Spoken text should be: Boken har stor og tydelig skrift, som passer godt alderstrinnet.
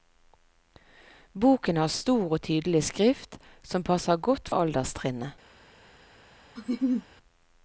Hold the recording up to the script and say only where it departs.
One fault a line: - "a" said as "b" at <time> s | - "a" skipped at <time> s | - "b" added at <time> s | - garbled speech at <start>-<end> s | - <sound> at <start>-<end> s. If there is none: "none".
- laugh at 6.6-7.1 s